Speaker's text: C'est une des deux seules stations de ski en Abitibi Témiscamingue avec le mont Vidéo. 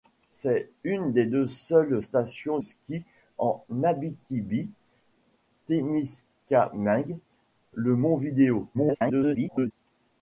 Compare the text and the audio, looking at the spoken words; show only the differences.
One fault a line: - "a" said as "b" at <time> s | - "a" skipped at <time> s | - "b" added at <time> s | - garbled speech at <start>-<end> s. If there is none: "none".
- "de" skipped at 2.6 s
- "avec" skipped at 7.2 s
- garbled speech at 8.7-9.7 s